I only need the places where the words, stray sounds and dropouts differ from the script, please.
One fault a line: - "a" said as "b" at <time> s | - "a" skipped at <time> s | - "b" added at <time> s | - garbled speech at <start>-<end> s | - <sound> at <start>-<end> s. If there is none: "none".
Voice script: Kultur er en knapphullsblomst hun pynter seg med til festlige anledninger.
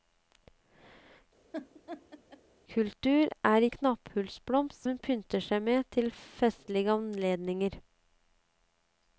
- laugh at 1.5-2.4 s